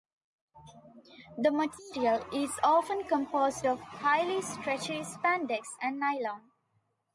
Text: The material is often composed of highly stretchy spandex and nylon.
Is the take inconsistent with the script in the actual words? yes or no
no